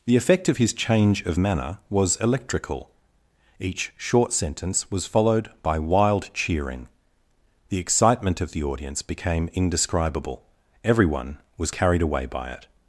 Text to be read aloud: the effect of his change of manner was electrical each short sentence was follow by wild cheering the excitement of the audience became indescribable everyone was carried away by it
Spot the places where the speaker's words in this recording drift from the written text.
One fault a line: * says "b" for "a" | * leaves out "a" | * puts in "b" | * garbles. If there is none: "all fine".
* says "followed" for "follow"